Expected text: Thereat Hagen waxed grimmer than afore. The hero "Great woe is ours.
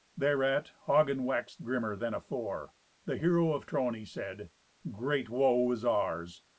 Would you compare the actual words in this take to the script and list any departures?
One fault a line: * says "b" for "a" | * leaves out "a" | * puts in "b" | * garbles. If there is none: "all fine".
* puts in "of Trony said"